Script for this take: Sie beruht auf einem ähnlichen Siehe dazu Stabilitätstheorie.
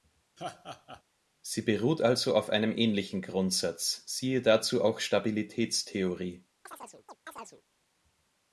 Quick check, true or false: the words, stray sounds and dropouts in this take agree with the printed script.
false